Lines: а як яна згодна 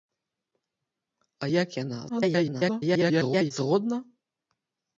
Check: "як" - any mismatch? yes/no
no